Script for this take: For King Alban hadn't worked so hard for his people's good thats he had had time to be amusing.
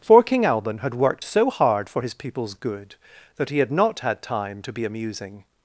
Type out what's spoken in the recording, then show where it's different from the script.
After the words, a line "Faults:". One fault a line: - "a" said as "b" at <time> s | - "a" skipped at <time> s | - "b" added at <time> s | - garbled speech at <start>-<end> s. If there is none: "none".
For King Alban had worked so hard for his people's good that he had not had time to be amusing.
Faults:
- "hadn't" said as "had" at 0.8 s
- "thats" said as "that" at 3.4 s
- "not" added at 3.7 s